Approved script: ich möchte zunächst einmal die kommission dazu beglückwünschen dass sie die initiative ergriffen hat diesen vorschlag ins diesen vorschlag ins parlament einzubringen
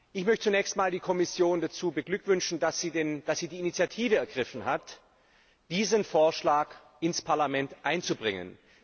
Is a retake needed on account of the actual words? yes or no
yes